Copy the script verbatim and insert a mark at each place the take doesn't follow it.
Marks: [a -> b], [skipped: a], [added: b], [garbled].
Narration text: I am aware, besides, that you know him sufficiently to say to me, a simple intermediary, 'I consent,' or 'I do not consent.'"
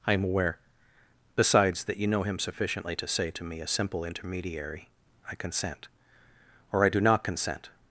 I am aware, besides, that you know him sufficiently to say to me, a simple intermediary, 'I consent,' or 'I do not consent.'"